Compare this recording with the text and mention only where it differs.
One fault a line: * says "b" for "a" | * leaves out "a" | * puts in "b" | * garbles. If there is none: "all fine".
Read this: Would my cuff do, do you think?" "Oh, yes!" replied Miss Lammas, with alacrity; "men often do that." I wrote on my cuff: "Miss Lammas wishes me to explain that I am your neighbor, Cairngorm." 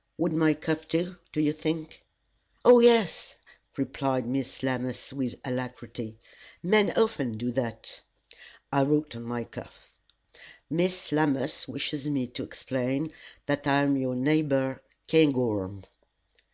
all fine